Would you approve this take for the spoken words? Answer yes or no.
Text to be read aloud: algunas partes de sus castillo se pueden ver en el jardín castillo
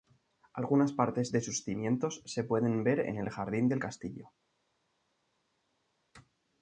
no